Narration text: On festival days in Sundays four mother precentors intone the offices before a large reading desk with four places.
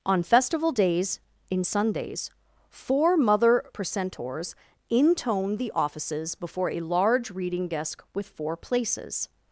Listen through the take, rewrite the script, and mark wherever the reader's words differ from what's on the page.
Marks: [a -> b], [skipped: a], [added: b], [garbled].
On festival days in Sundays four mother precentors intone the offices before a large reading desk with four places.